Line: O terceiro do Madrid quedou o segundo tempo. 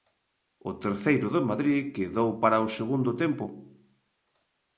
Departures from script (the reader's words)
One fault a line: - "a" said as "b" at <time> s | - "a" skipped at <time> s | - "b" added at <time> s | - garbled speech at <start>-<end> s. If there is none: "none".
- "para" added at 2.4 s